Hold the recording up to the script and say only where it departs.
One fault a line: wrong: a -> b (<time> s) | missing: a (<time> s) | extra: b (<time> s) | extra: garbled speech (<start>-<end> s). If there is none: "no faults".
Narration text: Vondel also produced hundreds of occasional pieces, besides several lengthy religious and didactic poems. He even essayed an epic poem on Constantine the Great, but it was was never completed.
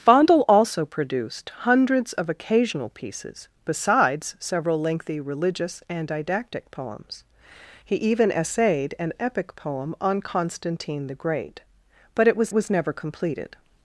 no faults